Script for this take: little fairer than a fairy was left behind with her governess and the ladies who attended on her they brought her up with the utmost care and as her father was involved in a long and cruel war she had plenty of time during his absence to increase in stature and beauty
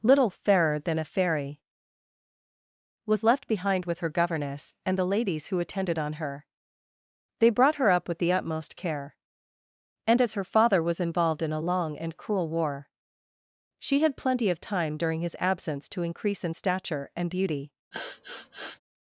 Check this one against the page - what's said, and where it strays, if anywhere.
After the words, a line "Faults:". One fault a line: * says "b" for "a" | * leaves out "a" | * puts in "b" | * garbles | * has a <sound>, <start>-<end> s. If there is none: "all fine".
little fairer than a fairy was left behind with her governess and the ladies who attended on her they brought her up with the utmost care and as her father was involved in a long and cruel war she had plenty of time during his absence to increase in stature and beauty
Faults:
* has a sniff, 17.9-18.8 s